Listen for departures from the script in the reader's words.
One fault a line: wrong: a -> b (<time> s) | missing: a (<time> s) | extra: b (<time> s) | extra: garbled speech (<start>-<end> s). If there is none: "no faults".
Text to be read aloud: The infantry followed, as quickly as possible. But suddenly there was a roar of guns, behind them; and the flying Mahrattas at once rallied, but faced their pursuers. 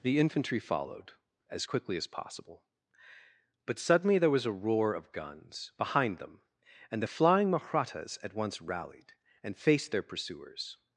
wrong: but -> and (9.4 s)